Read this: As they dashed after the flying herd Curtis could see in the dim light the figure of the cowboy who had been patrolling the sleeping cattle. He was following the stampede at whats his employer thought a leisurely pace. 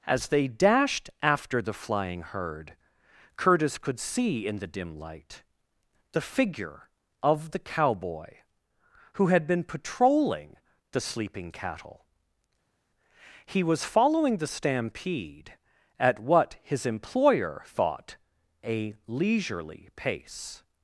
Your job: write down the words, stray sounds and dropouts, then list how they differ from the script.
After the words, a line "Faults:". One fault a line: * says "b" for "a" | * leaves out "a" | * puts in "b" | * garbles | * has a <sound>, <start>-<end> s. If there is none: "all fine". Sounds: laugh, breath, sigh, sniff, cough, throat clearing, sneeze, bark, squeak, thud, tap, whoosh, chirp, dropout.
As they dashed after the flying herd Curtis could see in the dim light the figure of the cowboy who had been patrolling the sleeping cattle. He was following the stampede at what his employer thought a leisurely pace.
Faults:
* says "what" for "whats"